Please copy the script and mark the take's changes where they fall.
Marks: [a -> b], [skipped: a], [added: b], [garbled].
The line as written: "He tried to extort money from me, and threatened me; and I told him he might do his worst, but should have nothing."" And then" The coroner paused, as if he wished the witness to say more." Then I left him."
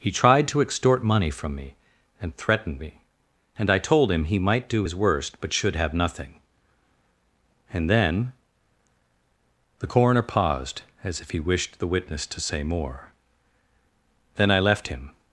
"He tried to extort money from me, and threatened me; and I told him he might do his worst, but should have nothing."" And then" The coroner paused, as if he wished the witness to say more." Then I left him."